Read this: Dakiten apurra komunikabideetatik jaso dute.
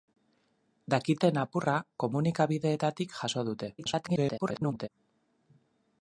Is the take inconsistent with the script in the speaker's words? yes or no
yes